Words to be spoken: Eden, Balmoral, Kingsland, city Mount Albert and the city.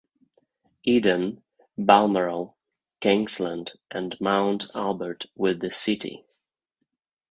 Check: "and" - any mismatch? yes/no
yes